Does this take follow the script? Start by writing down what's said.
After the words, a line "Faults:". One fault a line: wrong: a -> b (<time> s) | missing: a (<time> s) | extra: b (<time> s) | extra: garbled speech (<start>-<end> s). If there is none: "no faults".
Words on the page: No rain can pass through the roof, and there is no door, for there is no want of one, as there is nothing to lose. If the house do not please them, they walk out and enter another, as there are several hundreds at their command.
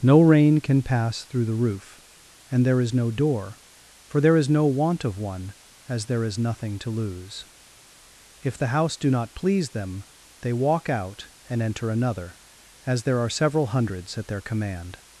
No rain can pass through the roof, and there is no door, for there is no want of one, as there is nothing to lose. If the house do not please them, they walk out and enter another, as there are several hundreds at their command.
Faults:
no faults